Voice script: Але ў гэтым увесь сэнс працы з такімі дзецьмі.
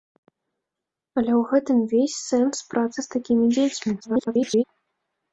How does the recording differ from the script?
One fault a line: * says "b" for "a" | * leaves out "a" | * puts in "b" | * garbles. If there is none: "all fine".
* garbles